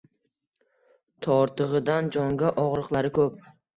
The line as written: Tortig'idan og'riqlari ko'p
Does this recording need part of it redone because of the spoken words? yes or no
yes